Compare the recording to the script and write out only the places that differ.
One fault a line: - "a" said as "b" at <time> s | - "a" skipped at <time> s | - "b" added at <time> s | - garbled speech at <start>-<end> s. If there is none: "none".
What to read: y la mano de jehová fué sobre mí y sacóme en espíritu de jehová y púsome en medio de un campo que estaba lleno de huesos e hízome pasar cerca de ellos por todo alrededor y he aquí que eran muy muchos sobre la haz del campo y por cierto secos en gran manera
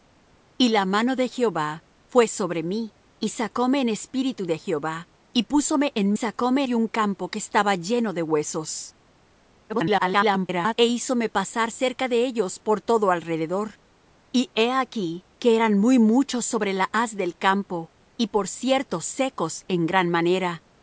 - "medio" said as "sacóme" at 6.1 s
- garbled speech at 9.7-10.7 s